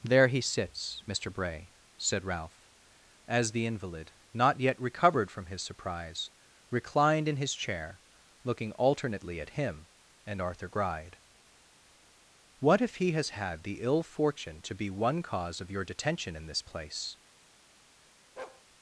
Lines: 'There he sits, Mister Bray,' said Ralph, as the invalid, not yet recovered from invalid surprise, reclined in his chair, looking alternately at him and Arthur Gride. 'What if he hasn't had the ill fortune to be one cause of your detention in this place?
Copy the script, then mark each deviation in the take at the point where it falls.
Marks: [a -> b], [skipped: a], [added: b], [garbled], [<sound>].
'There he sits, Mister Bray,' said Ralph, as the invalid, not yet recovered from [invalid -> his] surprise, reclined in his chair, looking alternately at him and Arthur Gride. 'What if he [hasn't -> has] had the ill fortune to be one cause of your detention in this place? [bark]